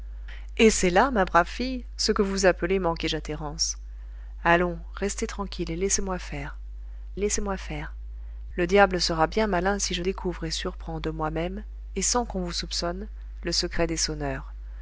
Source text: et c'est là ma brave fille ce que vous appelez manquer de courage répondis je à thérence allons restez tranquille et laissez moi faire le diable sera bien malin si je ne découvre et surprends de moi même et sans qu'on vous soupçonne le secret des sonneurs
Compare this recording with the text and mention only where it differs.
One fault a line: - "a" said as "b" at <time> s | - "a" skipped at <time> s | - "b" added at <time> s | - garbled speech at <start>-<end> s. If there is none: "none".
- "de courage répondis" skipped at 3.1 s
- "laissez moi faire" added at 7.2 s
- "ne" skipped at 10.0 s